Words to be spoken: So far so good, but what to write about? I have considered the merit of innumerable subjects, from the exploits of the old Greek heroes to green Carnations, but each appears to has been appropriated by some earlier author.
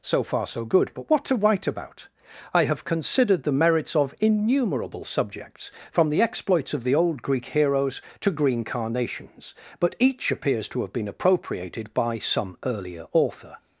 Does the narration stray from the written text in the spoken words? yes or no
yes